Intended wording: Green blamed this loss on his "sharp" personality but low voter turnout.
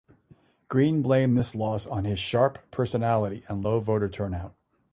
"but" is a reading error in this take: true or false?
true